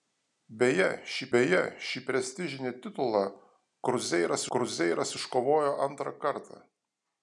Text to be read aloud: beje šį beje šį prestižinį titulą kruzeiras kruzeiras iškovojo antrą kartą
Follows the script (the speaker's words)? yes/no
yes